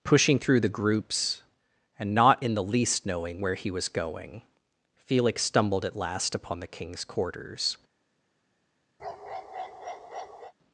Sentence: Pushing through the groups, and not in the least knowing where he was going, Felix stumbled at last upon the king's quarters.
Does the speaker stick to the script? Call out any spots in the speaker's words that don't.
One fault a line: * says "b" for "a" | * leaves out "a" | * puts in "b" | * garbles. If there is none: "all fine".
all fine